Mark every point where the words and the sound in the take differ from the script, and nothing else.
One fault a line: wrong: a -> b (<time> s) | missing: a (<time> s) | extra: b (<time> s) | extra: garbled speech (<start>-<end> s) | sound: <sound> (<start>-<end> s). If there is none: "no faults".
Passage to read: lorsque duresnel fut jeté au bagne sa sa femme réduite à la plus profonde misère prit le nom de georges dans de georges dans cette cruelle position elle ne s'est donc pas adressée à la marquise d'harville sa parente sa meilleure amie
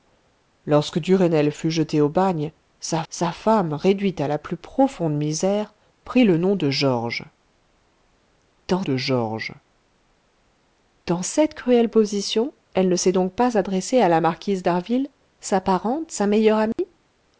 sound: dropout (16.7-16.8 s)